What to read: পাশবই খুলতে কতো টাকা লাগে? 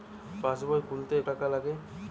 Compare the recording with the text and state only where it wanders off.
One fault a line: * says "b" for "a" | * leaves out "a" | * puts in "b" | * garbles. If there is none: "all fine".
* leaves out "কতো"